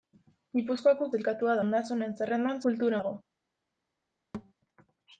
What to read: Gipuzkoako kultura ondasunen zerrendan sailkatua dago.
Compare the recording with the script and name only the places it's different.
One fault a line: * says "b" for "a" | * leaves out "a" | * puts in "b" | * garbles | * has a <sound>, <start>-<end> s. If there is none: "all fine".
* says "sailkatua" for "kultura"
* says "kultura" for "sailkatua"
* has a thud, 4.3-4.5 s